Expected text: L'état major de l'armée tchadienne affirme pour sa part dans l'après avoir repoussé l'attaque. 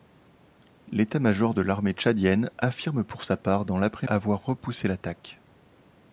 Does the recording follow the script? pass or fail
pass